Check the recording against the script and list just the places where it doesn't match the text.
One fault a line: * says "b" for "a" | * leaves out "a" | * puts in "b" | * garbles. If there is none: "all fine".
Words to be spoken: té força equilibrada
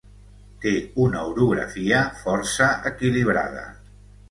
* puts in "una orografia"